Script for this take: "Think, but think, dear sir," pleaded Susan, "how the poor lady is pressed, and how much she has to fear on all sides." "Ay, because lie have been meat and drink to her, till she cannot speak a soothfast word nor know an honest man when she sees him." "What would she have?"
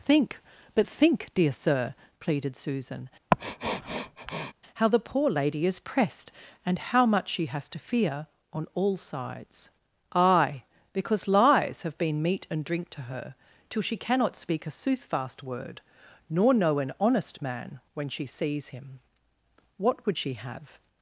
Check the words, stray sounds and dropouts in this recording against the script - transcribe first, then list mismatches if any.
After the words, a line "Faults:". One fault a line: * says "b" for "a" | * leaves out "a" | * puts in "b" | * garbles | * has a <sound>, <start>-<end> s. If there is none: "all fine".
"Think, but think, dear sir," pleaded Susan, "how the poor lady is pressed, and how much she has to fear on all sides." "Ay, because lies have been meat and drink to her, till she cannot speak a soothfast word nor know an honest man when she sees him." "What would she have?"
Faults:
* has a sniff, 3.3-4.5 s
* says "lies" for "lie"